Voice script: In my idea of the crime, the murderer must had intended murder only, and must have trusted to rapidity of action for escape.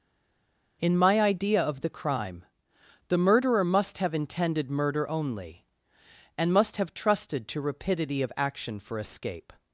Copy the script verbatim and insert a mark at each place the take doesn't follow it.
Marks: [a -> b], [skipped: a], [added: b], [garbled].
In my idea of the crime, the murderer must [had -> have] intended murder only, and must have trusted to rapidity of action for escape.